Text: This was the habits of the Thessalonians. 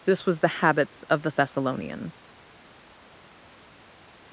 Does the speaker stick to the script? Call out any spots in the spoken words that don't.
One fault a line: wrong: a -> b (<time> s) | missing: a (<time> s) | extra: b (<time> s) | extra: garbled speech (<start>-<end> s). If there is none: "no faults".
no faults